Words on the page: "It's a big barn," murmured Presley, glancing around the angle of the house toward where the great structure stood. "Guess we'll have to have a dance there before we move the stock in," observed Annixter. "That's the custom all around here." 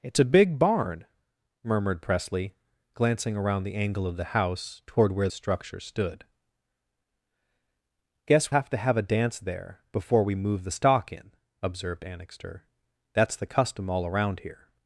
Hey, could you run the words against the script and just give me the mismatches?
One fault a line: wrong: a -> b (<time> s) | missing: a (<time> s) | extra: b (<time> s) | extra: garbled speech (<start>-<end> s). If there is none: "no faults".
missing: the great (5.3 s)
missing: we'll (8.5 s)